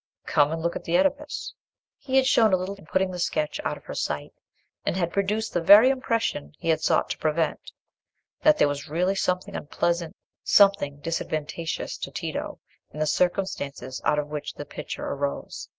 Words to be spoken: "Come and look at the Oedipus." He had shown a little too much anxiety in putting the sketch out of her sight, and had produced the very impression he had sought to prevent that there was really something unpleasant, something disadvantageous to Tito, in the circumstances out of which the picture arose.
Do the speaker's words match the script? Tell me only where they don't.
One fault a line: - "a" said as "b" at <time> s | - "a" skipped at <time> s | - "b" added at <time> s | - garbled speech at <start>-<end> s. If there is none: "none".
- "too much anxiety" skipped at 2.8 s